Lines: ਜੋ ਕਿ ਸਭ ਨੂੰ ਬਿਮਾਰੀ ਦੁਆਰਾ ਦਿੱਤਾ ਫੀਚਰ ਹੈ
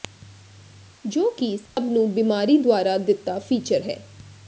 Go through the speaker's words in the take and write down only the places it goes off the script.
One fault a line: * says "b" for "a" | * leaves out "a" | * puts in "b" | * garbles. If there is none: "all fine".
all fine